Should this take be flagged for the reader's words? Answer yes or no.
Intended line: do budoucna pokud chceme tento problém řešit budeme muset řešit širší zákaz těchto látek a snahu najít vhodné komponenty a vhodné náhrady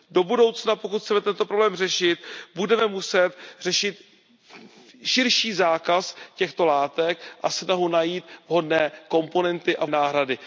yes